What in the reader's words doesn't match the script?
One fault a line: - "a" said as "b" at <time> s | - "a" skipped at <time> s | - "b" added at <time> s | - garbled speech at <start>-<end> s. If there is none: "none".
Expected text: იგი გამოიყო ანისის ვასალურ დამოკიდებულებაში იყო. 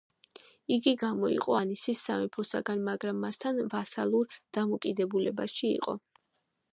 - "სამეფოსაგან მაგრამ მასთან" added at 2.1 s